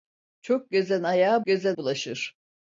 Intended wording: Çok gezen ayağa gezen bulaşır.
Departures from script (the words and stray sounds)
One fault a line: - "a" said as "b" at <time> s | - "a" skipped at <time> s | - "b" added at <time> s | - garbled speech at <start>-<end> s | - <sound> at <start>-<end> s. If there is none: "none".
none